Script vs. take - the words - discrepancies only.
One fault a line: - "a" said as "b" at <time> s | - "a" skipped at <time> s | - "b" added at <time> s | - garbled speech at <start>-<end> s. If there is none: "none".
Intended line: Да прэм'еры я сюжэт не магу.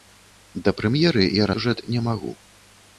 none